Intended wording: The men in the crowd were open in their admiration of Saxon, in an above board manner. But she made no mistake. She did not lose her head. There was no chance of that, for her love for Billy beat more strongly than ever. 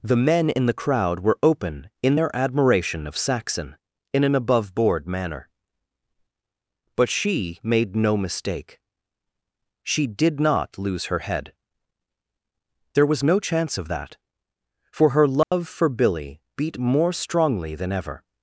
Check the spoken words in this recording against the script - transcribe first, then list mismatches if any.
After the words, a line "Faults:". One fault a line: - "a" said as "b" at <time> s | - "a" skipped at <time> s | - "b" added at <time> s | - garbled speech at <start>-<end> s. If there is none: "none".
The men in the crowd were open in their admiration of Saxon, in an above board manner. But she made no mistake. She did not lose her head. There was no chance of that, for her love for Billy beat more strongly than ever.
Faults:
none